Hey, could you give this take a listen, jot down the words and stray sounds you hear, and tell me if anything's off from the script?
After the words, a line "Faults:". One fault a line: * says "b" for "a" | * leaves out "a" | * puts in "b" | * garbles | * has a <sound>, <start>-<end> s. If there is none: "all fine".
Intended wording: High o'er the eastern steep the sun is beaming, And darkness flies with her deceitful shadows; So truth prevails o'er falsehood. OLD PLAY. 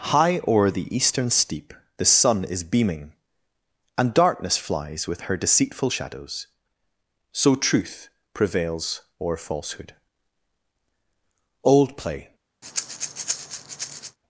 High o'er the eastern steep the sun is beaming, And darkness flies with her deceitful shadows; So truth prevails o'er falsehood. OLD PLAY.
Faults:
* has a breath, 12.6-14.2 s